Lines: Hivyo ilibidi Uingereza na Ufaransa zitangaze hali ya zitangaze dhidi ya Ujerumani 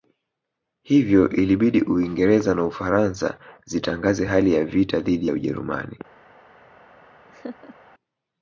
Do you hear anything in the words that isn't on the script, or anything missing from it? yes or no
yes